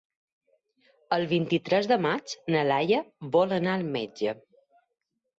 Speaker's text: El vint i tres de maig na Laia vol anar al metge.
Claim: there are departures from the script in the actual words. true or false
false